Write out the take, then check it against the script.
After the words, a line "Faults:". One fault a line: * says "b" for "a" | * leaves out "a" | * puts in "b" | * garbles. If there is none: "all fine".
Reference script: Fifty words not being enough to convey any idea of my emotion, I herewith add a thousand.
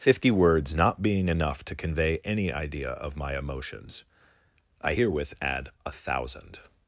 Fifty words not being enough to convey any idea of my emotions, I herewith add a thousand.
Faults:
* says "emotions" for "emotion"